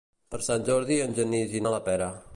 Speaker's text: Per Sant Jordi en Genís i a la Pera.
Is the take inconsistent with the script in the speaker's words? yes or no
no